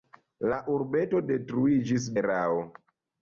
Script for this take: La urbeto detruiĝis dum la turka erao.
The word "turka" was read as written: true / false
false